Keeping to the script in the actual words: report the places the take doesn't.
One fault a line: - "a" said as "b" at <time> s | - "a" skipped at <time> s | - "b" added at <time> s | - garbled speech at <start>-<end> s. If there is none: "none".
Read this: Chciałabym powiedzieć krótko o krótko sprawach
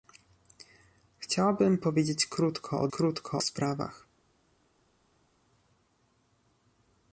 none